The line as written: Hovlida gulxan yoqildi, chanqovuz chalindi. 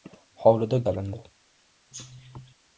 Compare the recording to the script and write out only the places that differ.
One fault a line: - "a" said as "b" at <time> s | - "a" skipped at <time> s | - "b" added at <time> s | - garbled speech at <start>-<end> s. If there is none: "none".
- "gulxan yoqildi chanqovuz" skipped at 0.8 s